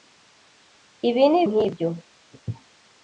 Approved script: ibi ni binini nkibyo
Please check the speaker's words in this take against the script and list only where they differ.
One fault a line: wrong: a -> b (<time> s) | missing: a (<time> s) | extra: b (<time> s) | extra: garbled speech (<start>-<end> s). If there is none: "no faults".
missing: binini (1.4 s)